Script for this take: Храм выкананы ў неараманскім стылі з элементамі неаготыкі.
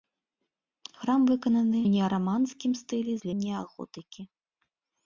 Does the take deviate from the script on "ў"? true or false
true